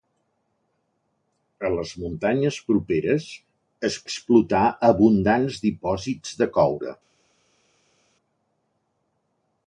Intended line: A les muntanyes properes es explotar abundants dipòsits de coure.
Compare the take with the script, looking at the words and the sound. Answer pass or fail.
pass